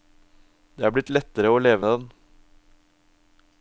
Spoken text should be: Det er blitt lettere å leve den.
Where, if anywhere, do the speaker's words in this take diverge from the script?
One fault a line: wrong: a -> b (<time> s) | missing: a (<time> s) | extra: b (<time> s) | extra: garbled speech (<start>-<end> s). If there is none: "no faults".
no faults